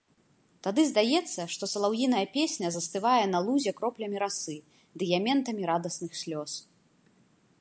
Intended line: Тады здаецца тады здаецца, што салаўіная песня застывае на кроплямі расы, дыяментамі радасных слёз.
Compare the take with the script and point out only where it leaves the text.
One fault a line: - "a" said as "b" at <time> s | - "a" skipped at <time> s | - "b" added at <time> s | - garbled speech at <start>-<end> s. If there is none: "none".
- "тады здаецца" skipped at 1.4 s
- "лузе" added at 3.5 s